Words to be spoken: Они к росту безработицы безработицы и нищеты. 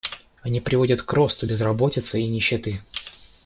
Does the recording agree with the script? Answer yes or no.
no